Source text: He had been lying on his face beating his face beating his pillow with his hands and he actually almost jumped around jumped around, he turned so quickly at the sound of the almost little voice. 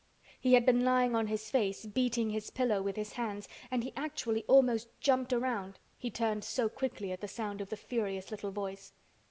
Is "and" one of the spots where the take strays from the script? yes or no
no